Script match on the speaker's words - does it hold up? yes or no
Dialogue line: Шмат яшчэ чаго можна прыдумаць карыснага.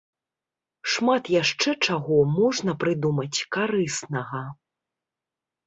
yes